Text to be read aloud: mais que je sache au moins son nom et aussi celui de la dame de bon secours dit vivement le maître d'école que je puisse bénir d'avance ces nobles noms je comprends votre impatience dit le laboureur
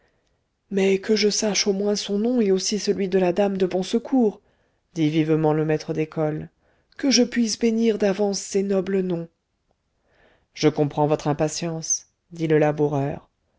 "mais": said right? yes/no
yes